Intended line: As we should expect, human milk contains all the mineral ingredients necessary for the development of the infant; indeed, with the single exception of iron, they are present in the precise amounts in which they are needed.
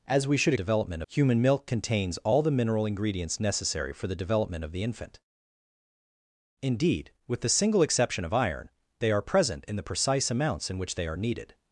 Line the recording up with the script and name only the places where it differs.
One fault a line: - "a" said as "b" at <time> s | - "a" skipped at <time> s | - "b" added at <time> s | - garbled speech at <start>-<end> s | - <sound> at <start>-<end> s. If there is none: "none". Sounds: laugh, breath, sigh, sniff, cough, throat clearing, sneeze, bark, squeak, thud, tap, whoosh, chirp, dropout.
- "expect" said as "development" at 0.5 s